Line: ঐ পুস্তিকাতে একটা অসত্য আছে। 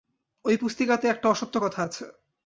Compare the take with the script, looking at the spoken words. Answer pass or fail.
fail